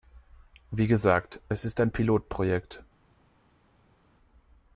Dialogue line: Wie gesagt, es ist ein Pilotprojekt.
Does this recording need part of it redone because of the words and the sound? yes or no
no